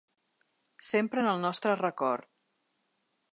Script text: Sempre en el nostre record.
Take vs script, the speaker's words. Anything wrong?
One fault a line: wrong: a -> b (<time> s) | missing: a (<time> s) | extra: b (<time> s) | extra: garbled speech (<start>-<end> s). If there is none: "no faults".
no faults